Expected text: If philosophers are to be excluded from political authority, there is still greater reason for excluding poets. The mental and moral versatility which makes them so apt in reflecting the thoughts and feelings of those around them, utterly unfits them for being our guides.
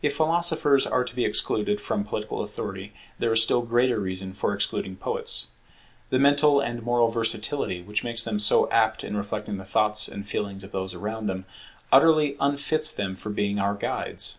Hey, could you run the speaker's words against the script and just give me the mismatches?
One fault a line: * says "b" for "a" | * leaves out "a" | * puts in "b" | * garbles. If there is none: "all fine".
all fine